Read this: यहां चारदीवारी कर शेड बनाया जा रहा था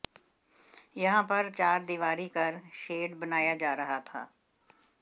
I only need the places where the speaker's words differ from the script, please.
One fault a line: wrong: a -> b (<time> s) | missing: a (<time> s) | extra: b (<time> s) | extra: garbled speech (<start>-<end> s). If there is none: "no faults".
extra: पर (1.2 s)